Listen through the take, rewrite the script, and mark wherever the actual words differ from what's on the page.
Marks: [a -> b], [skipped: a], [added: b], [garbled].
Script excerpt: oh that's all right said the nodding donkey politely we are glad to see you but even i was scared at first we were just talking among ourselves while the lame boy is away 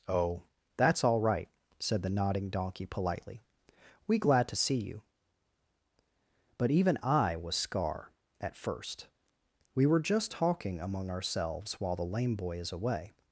oh that's all right said the nodding donkey politely we [skipped: are] glad to see you but even i was [scared -> scar] at first we were just talking among ourselves while the lame boy is away